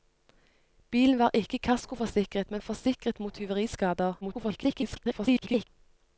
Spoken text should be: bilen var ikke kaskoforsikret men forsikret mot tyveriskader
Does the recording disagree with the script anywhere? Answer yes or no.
yes